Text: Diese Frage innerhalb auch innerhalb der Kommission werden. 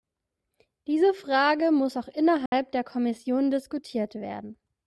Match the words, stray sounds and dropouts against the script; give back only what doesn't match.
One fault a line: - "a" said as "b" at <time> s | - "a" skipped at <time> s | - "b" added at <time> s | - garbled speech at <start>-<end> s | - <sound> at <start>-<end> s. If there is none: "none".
- "innerhalb" said as "muss" at 1.7 s
- dropout at 2.5-2.5 s
- "diskutiert" added at 3.5 s